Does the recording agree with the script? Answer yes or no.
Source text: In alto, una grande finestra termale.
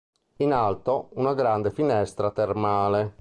yes